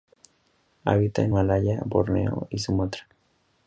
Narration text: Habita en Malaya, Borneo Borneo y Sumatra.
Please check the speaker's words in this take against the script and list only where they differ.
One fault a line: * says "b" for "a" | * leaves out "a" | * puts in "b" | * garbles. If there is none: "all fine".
* leaves out "Borneo"